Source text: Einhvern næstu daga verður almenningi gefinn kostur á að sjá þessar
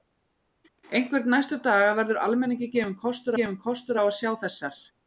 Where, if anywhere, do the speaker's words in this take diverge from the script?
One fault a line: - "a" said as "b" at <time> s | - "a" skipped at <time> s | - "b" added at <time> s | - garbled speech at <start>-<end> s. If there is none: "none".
- "gefinn kostur" added at 3.4 s